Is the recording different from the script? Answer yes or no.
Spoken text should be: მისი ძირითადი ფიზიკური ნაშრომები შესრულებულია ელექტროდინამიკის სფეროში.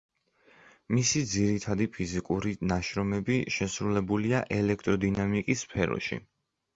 no